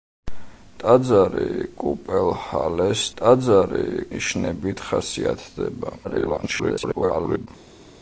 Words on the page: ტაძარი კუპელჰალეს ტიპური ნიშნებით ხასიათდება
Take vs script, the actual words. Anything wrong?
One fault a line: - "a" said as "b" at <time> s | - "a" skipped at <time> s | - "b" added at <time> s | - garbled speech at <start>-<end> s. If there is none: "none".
- "ტიპური" said as "ტაძარი" at 3.2 s
- garbled speech at 6.0-7.5 s